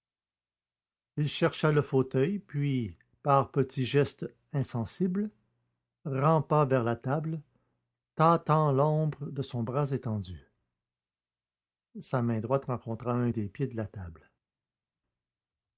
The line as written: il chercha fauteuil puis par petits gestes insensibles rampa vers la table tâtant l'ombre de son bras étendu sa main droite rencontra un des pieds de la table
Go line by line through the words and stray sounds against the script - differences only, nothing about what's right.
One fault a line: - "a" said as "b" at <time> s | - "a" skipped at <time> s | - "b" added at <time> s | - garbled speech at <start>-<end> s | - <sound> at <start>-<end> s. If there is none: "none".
- "le" added at 1.7 s